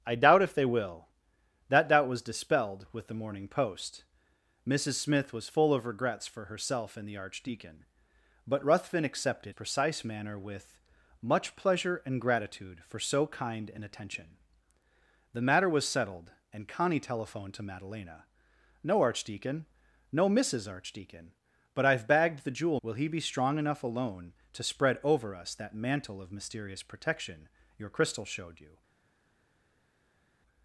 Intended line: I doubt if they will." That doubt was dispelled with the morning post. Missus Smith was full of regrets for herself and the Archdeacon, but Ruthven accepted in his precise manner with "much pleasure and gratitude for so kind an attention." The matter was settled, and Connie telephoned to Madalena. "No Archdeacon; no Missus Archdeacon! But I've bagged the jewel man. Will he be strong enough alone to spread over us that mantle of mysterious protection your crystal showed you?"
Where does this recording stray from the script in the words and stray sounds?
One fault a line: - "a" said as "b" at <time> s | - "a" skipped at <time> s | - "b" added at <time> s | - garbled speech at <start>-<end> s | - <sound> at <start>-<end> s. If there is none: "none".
- "in his" skipped at 9.5 s
- "man" skipped at 22.8 s